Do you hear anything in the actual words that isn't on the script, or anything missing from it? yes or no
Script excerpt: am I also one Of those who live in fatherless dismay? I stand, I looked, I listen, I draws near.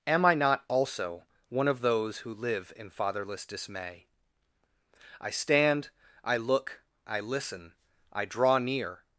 yes